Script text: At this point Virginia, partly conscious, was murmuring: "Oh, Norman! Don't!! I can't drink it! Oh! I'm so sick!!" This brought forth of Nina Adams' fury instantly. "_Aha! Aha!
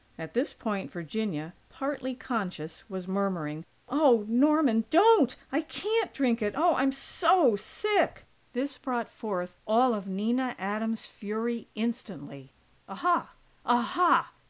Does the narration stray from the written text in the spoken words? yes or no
yes